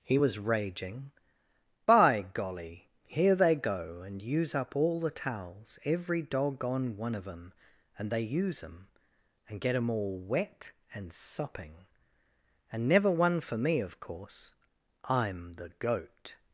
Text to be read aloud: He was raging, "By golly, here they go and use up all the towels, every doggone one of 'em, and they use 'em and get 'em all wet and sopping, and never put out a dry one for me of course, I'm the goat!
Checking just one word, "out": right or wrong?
wrong